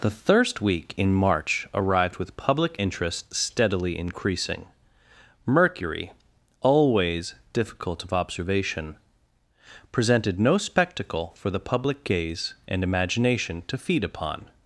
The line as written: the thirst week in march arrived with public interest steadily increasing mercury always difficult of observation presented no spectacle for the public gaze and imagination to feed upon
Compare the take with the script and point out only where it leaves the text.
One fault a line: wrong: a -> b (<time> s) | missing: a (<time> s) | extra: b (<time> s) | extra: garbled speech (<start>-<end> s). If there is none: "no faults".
no faults